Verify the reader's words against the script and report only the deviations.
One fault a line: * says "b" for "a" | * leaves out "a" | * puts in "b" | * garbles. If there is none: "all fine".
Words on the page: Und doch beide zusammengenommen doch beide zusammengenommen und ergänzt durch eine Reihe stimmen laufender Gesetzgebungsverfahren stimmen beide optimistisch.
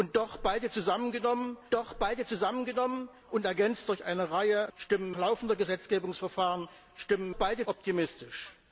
all fine